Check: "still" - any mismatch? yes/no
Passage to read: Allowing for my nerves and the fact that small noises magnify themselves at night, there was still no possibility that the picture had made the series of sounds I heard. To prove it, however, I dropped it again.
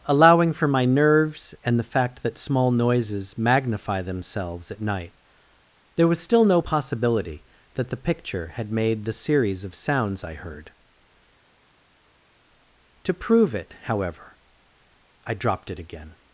no